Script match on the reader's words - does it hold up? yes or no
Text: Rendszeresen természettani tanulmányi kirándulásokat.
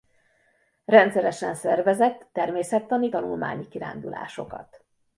no